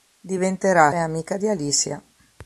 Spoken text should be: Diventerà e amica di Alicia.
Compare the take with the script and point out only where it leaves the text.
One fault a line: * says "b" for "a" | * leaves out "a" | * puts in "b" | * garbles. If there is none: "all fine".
all fine